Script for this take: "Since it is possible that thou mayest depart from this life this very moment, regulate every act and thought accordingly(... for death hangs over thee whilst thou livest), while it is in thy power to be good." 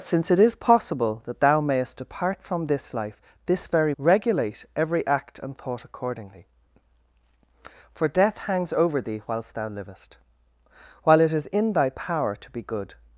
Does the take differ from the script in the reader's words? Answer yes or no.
yes